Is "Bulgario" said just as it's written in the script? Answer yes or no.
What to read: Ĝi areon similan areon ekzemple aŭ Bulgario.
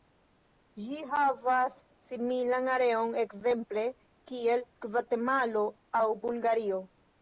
yes